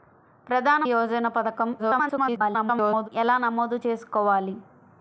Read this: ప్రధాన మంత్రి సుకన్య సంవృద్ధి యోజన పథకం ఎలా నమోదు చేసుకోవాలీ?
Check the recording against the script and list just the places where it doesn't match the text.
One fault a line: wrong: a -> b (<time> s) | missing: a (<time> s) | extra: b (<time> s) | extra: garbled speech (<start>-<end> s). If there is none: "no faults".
missing: మంత్రి సుకన్య సంవృద్ధి (0.8 s)
extra: garbled speech (1.8-3.1 s)